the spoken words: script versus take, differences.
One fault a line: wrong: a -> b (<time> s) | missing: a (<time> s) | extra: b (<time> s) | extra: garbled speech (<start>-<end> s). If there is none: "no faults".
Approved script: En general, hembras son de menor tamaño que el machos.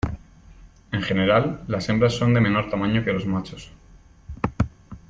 extra: las (1.7 s)
wrong: el -> los (3.1 s)